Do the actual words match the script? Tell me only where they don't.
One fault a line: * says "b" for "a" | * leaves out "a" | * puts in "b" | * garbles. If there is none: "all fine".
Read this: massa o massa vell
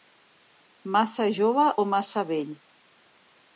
* puts in "jove"